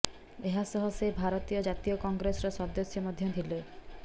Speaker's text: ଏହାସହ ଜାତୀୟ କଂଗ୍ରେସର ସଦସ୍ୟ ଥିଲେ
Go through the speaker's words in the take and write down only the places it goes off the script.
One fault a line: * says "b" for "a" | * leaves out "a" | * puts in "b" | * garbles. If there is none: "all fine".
* puts in "ସେ ଭାରତୀୟ"
* puts in "ମଧ୍ୟ"